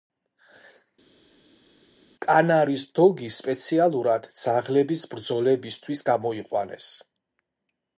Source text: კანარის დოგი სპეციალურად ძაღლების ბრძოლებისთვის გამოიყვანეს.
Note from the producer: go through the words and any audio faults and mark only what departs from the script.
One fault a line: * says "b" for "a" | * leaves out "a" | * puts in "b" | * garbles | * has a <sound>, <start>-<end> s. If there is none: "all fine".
all fine